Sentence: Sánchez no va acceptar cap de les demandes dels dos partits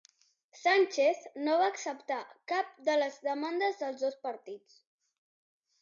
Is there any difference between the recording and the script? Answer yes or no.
no